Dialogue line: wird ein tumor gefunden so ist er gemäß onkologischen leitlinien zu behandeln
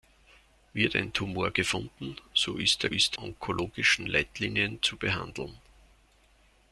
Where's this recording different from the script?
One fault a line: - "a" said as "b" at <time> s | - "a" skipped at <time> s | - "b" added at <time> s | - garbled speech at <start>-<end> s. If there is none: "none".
- "gemäß" said as "ist" at 2.9 s